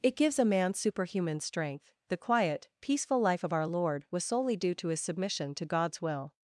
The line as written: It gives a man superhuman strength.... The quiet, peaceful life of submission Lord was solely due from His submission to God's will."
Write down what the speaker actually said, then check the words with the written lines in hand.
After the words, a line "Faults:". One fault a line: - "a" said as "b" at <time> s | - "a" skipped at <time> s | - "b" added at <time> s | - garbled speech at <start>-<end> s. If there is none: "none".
It gives a man superhuman strength.... The quiet, peaceful life of our Lord was solely due to His submission to God's will."
Faults:
- "submission" said as "our" at 3.5 s
- "from" said as "to" at 4.7 s